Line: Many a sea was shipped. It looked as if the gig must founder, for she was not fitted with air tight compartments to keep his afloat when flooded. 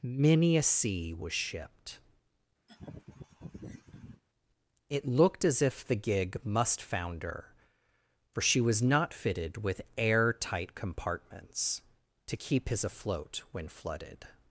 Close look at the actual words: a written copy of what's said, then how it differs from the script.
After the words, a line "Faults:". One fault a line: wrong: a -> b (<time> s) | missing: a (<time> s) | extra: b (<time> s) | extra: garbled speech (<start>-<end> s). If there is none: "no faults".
Many a sea was shipped. It looked as if the gig must founder, for she was not fitted with air tight compartments to keep his afloat when flooded.
Faults:
no faults